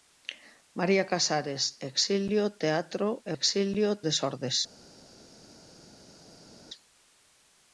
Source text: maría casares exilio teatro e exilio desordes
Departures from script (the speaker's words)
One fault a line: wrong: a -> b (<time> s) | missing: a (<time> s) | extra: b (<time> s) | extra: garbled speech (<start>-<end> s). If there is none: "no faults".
no faults